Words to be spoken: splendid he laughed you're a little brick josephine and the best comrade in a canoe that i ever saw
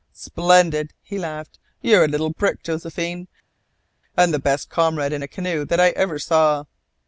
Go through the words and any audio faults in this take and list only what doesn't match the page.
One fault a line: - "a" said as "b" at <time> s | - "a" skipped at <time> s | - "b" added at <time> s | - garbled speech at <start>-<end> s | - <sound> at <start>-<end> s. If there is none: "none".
none